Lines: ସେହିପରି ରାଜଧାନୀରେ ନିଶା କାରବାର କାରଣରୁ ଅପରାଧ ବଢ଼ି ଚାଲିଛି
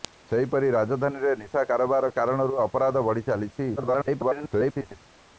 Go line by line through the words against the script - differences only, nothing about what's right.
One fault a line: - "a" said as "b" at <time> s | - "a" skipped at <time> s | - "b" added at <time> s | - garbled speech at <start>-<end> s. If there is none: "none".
- garbled speech at 3.8-5.0 s